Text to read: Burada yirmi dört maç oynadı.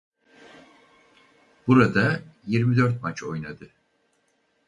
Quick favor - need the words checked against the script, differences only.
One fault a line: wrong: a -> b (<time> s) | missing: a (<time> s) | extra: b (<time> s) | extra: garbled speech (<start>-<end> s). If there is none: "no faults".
no faults